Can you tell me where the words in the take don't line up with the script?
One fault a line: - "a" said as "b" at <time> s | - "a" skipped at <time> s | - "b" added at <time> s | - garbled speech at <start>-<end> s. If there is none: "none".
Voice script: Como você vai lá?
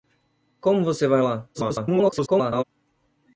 - garbled speech at 1.5-2.6 s